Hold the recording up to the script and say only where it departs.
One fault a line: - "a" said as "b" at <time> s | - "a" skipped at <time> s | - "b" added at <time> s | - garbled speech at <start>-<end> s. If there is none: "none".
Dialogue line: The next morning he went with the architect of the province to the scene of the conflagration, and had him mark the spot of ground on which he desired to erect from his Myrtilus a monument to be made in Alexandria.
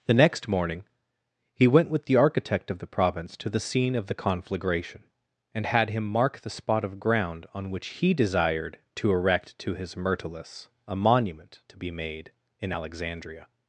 - "from" said as "to" at 9.6 s